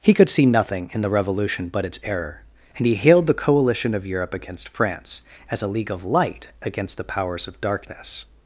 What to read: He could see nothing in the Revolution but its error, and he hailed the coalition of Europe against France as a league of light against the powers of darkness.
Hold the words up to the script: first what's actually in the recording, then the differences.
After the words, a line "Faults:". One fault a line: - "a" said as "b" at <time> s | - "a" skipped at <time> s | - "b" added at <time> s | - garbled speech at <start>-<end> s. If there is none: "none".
He could see nothing in the Revolution but its error, and he hailed the coalition of Europe against France as a league of light against the powers of darkness.
Faults:
none